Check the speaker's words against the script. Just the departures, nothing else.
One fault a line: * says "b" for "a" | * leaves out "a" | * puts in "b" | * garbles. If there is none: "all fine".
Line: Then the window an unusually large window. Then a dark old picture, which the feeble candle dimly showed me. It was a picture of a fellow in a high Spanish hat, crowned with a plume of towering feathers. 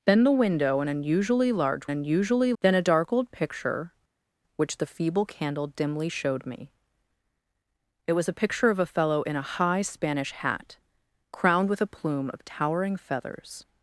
* says "unusually" for "window"